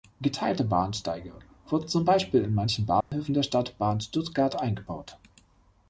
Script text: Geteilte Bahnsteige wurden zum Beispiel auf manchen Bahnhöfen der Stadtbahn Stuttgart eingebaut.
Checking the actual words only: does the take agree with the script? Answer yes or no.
no